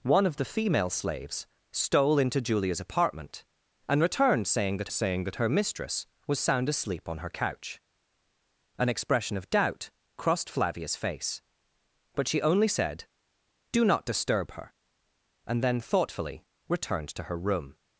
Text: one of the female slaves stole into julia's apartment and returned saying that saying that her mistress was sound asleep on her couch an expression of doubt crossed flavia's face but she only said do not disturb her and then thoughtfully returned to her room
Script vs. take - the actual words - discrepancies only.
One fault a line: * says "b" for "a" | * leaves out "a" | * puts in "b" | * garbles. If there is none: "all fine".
all fine